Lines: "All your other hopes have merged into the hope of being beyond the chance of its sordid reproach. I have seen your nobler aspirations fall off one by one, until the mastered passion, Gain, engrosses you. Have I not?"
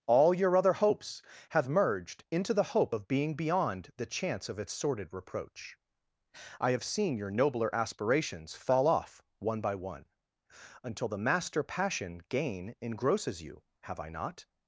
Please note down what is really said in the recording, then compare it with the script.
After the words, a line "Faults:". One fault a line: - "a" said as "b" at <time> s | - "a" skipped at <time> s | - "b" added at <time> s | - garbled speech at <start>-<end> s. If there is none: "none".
"All your other hopes have merged into the hope of being beyond the chance of its sordid reproach. I have seen your nobler aspirations fall off one by one, until the master passion, Gain, engrosses you. Have I not?"
Faults:
- "mastered" said as "master" at 11.2 s